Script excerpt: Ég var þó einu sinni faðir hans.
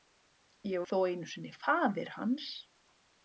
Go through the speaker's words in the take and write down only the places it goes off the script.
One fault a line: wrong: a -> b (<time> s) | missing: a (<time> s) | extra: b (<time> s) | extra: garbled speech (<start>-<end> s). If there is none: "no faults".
missing: var (0.8 s)